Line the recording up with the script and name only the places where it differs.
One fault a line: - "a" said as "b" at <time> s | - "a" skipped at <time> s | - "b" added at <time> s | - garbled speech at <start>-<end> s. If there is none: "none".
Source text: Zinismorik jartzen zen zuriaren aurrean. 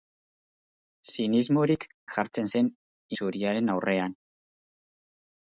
none